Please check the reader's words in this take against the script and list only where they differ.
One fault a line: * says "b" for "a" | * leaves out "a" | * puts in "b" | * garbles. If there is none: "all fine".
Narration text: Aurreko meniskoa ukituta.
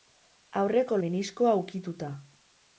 all fine